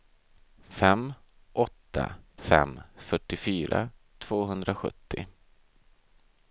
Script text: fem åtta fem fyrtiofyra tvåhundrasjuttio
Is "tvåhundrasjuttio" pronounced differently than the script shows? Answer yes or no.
no